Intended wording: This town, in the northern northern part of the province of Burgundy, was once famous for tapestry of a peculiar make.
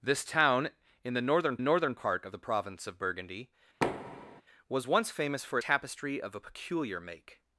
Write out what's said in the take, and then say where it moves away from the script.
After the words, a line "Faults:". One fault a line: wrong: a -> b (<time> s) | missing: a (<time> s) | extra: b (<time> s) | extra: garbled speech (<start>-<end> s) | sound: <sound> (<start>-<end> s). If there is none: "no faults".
This town, in the northern northern part of the province of Burgundy, was once famous for tapestry of a peculiar make.
Faults:
sound: thud (3.8-4.4 s)